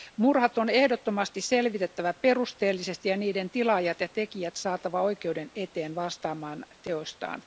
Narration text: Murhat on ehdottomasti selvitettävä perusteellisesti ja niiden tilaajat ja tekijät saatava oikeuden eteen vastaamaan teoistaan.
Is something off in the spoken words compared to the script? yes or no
no